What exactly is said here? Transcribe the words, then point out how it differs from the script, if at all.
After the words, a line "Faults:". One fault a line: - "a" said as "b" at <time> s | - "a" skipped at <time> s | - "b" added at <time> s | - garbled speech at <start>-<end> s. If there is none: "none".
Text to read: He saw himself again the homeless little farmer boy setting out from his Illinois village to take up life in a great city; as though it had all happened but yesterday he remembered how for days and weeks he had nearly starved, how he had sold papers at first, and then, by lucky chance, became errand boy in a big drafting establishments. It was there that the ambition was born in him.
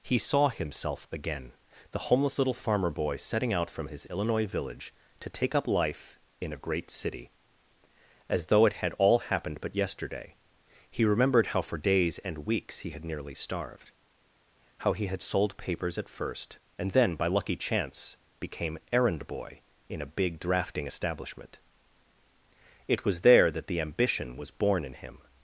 He saw himself again the homeless little farmer boy setting out from his Illinois village to take up life in a great city; as though it had all happened but yesterday he remembered how for days and weeks he had nearly starved, how he had sold papers at first, and then, by lucky chance, became errand boy in a big drafting establishment. It was there that the ambition was born in him.
Faults:
- "establishments" said as "establishment" at 20.9 s